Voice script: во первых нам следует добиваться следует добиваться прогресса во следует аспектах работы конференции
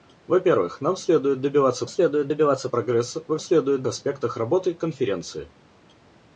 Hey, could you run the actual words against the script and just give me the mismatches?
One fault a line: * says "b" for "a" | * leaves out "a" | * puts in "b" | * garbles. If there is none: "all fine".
all fine